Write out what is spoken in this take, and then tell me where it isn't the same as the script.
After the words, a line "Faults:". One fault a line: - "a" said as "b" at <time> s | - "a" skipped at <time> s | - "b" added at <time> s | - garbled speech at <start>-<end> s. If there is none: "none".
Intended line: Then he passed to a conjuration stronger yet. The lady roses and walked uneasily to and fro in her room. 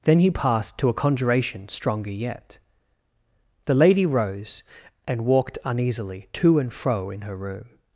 Then he passed to a conjuration stronger yet. The lady rose and walked uneasily to and fro in her room.
Faults:
- "roses" said as "rose" at 4.0 s